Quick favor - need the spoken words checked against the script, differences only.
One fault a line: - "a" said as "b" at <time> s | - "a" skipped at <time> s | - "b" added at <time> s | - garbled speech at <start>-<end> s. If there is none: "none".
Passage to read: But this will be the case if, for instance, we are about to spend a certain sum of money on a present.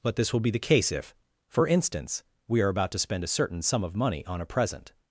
none